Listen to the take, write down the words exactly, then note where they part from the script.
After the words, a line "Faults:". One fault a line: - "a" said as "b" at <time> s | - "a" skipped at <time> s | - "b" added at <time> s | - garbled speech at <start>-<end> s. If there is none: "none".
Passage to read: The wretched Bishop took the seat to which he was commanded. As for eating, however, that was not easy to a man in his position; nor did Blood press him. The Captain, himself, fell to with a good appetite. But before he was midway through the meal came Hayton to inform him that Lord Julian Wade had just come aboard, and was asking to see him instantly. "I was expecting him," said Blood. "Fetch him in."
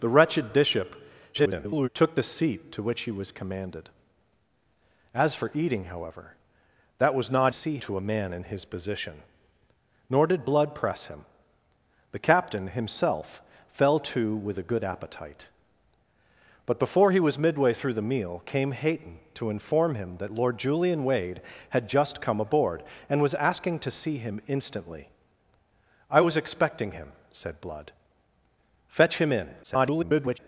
The wretched Bishop [garbled] took the seat to which he was commanded. As for eating, however, that was not see to a man in his position; nor did Blood press him. The Captain, himself, fell to with a good appetite. But before he was midway through the meal came Hayton to inform him that Lord Julian Wade had just come aboard, and was asking to see him instantly. "I was expecting him," said Blood. "Fetch him in." [garbled]
Faults:
- garbled speech at 1.3-1.9 s
- "easy" said as "see" at 7.5 s
- garbled speech at 29.6-30.4 s